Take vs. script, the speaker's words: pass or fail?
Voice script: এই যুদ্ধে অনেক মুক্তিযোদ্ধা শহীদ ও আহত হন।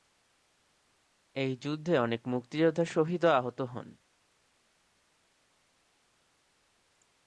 pass